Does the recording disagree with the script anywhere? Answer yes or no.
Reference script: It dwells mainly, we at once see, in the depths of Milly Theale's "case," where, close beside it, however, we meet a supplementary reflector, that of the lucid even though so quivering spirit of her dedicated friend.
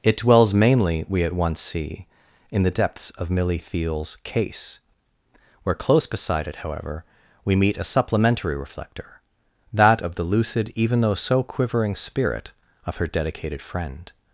no